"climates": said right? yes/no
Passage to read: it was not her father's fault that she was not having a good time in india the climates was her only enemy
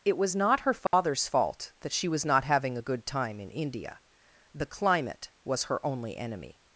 no